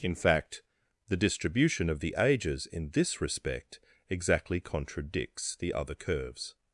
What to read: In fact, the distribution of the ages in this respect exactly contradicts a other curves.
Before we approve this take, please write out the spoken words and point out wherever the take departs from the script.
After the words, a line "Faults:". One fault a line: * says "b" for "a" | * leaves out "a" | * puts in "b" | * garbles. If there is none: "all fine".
In fact, the distribution of the ages in this respect exactly contradicts the other curves.
Faults:
* says "the" for "a"